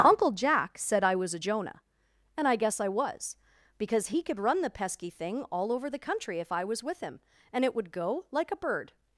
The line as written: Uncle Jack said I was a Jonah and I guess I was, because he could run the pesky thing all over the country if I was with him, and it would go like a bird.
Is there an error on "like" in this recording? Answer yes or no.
no